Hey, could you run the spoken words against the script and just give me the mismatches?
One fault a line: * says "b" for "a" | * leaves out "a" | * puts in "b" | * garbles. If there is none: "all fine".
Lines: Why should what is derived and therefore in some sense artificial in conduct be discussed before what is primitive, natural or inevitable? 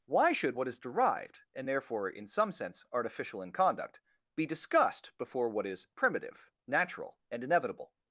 * says "and" for "or"